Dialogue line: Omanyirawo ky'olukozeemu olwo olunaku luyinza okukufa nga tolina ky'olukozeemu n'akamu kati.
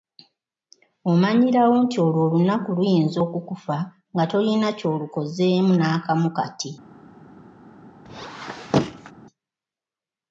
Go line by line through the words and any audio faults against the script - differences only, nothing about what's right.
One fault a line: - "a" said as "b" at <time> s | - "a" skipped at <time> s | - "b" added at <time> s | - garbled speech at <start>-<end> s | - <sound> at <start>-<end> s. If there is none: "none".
- "ky'olukozeemu" said as "nti" at 1.8 s
- squeak at 8.1-9.1 s